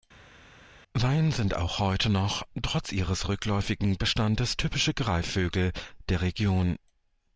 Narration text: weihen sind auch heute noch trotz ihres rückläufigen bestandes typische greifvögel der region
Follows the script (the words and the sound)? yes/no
yes